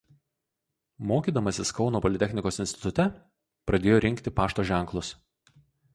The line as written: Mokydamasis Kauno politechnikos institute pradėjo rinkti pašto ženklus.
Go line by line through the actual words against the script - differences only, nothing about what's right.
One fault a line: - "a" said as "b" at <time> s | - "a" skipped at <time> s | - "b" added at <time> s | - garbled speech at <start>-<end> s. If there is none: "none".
none